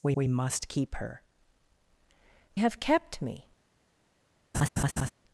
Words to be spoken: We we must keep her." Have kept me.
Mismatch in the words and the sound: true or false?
true